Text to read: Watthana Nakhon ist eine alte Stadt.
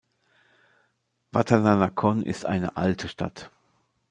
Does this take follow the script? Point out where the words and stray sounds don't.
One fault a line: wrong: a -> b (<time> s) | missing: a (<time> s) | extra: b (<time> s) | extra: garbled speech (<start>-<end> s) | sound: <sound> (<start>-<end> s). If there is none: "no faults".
no faults